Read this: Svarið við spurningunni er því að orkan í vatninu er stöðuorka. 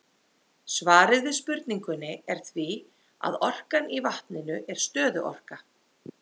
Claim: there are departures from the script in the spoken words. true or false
false